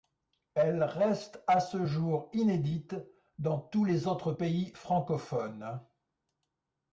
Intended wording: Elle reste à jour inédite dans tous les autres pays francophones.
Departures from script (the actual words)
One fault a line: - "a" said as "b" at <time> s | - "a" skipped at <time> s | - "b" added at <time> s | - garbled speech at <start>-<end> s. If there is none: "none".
- "ce" added at 1.6 s